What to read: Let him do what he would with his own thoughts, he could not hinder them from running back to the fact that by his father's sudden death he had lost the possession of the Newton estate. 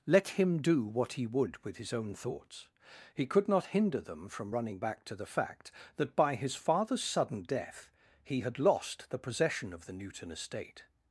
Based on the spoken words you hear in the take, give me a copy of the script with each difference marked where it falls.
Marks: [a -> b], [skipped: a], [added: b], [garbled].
Let him do what he would with his own thoughts, he could not hinder them from running back to the fact that by his father's sudden death he had lost the possession of the Newton estate.